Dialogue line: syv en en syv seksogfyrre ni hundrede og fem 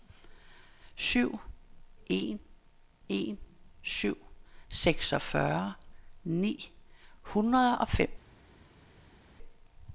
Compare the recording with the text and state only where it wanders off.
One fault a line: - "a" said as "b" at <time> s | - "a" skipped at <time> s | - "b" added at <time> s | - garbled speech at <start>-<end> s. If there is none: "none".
none